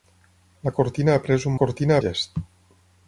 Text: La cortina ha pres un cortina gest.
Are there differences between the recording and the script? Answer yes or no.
no